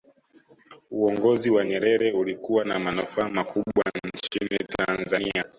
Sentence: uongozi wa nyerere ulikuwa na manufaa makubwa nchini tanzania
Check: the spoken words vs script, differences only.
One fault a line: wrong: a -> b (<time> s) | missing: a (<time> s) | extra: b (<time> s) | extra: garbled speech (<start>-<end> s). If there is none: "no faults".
no faults